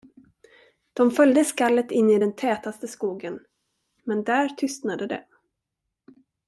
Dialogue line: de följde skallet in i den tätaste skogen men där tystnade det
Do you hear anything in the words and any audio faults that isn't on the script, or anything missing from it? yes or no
no